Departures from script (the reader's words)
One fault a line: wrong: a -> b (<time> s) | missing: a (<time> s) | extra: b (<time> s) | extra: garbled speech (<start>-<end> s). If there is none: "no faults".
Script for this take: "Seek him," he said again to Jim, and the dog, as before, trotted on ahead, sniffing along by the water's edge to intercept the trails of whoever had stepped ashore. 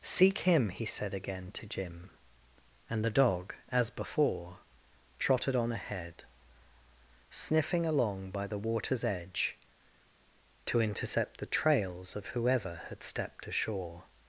no faults